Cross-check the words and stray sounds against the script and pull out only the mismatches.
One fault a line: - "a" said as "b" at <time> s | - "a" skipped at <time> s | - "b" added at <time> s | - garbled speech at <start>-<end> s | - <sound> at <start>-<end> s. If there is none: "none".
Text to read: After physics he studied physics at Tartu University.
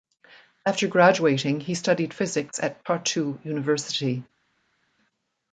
- "physics" said as "graduating" at 0.9 s